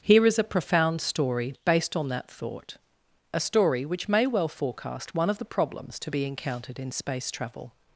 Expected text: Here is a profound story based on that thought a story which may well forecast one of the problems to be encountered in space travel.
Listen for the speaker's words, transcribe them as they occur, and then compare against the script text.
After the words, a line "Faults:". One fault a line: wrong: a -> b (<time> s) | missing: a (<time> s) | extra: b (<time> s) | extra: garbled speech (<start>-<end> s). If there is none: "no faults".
Here is a profound story based on that thought a story which may well forecast one of the problems to be encountered in space travel.
Faults:
no faults